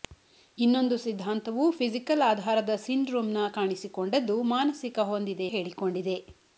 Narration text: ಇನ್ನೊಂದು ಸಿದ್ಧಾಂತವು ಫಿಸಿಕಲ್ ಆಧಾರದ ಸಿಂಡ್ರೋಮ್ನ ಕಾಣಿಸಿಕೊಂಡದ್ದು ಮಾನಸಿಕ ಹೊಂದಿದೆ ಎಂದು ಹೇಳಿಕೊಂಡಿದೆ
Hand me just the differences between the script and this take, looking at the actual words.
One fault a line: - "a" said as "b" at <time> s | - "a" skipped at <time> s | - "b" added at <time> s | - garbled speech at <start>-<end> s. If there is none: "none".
- "ಎಂದು" skipped at 5.5 s